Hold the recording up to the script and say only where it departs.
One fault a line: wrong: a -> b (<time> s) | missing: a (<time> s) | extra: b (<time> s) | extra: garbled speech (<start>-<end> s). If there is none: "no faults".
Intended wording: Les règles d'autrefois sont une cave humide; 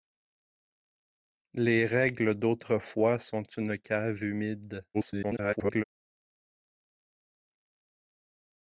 extra: garbled speech (4.9-5.8 s)